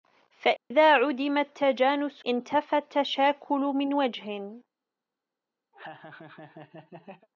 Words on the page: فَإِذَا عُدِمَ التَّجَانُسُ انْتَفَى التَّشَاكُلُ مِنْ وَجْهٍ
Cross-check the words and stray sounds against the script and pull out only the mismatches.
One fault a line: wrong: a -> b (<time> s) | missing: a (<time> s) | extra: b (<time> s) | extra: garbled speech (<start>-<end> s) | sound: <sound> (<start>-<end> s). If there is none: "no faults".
sound: dropout (0.6-0.7 s)
sound: laugh (5.7-7.3 s)